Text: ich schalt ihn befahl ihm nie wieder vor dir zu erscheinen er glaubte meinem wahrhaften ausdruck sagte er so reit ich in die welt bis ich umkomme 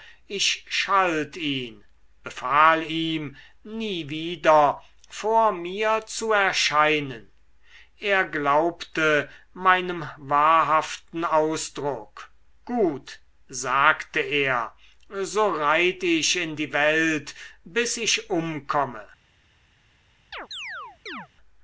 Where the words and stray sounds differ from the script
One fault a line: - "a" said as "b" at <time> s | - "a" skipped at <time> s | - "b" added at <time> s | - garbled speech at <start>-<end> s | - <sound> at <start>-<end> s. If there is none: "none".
- "dir" said as "mir" at 5.5 s
- "gut" added at 12.6 s
- chirp at 20.3-21.3 s